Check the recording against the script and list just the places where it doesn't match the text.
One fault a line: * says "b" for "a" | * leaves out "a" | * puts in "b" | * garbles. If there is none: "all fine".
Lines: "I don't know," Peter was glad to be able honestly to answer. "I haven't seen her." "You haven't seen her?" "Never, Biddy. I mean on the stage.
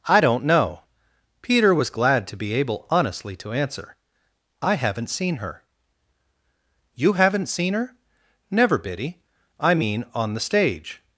all fine